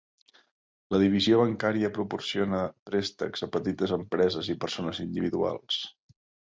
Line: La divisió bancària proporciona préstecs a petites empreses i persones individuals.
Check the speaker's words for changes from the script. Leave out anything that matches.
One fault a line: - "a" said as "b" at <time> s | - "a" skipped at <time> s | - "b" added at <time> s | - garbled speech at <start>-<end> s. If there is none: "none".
none